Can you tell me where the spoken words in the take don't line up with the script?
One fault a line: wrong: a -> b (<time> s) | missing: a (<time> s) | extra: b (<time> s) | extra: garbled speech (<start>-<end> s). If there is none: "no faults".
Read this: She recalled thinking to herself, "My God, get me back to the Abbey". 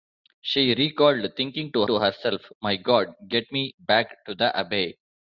extra: to (1.9 s)